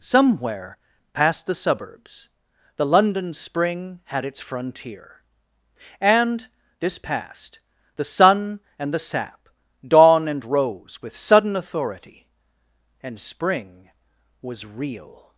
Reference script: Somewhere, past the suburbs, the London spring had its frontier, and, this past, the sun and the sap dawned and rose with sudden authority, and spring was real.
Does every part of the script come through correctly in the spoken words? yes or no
no